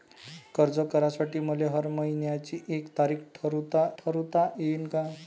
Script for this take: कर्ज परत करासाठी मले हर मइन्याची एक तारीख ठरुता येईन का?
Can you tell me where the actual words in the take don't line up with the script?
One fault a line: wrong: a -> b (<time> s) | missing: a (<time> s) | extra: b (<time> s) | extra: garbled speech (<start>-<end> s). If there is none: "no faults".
missing: परत (0.8 s)
extra: ठरुता (4.0 s)